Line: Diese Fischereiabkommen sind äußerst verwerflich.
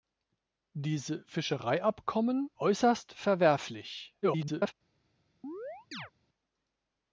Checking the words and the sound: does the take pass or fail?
fail